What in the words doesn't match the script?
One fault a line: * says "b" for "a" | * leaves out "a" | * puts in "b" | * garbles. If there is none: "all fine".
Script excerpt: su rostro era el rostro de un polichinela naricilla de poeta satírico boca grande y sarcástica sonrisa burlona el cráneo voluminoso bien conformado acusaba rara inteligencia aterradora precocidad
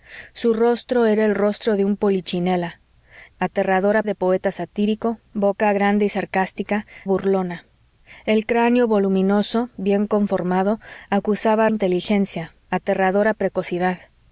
* says "aterradora" for "naricilla"
* leaves out "sonrisa"
* leaves out "rara"